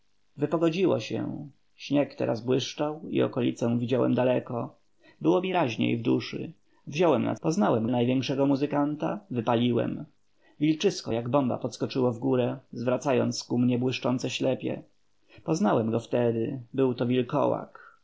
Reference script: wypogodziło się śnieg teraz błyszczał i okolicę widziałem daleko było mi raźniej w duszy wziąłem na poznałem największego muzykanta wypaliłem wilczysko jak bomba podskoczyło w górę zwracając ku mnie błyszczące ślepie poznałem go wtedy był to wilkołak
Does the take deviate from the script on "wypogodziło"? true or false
false